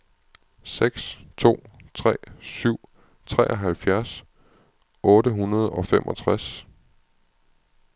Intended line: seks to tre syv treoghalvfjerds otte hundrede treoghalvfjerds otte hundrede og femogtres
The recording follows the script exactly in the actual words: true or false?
false